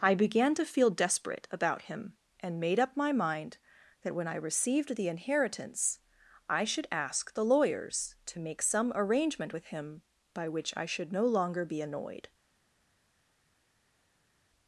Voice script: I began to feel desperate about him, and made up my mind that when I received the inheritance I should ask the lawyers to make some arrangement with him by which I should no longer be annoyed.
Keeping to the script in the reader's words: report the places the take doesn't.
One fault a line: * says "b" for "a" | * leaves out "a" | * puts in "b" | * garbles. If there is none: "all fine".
all fine